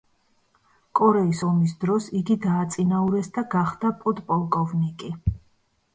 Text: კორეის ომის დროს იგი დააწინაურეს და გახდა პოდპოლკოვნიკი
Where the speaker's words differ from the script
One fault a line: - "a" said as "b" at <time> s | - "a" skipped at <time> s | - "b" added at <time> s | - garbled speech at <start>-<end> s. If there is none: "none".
none